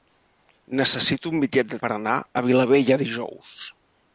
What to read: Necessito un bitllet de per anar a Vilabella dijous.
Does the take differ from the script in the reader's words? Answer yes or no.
no